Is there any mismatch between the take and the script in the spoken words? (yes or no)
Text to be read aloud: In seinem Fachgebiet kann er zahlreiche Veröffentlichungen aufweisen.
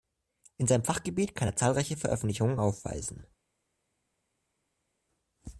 no